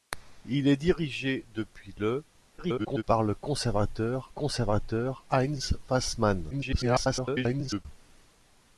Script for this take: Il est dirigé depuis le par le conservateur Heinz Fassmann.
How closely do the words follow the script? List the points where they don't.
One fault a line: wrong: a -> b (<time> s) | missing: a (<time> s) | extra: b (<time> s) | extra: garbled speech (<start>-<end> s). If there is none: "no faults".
extra: garbled speech (2.6-3.0 s)
extra: conservateur (4.3 s)
extra: garbled speech (6.5-7.9 s)